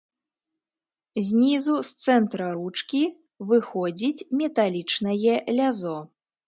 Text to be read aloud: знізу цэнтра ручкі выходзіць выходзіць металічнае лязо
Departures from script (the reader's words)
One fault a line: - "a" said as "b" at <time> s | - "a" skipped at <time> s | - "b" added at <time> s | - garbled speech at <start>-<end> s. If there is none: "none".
- "з" added at 1.9 s
- "выходзіць" skipped at 4.3 s